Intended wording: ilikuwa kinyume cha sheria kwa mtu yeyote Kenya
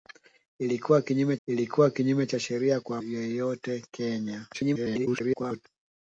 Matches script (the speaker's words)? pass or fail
fail